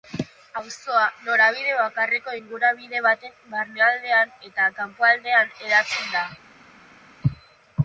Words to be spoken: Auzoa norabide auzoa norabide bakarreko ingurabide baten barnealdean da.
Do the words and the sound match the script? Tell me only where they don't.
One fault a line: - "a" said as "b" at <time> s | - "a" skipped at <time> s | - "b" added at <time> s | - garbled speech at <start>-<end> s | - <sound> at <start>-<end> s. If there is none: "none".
- "auzoa norabide" skipped at 1.8 s
- "eta kanpoaldean hedatzen" added at 4.5 s